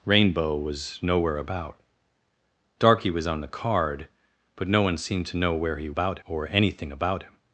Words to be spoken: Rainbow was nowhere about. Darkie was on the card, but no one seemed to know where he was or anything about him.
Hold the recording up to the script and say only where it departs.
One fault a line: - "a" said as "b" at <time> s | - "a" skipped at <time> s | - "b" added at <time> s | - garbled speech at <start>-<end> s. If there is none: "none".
- "was" said as "about" at 5.9 s